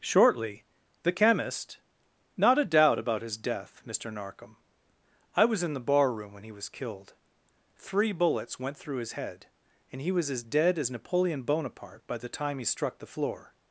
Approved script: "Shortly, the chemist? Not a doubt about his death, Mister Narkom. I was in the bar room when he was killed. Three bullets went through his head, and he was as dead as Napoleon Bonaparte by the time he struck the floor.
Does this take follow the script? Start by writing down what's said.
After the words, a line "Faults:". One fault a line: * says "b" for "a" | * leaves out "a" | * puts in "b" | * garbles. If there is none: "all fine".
"Shortly, the chemist? Not a doubt about his death, Mister Narkom. I was in the bar room when he was killed. Three bullets went through his head, and he was as dead as Napoleon Bonaparte by the time he struck the floor.
Faults:
all fine